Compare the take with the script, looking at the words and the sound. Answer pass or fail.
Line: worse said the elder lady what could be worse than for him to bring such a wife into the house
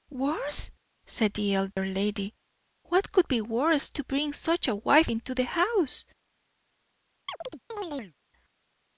fail